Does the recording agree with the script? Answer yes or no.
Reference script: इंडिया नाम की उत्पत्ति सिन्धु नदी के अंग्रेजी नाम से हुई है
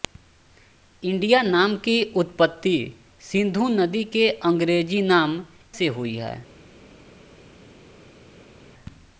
yes